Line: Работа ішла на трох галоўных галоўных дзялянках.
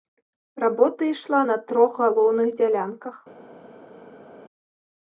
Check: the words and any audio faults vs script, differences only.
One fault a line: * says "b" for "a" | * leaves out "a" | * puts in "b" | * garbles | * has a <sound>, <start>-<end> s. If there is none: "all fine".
* leaves out "галоўных"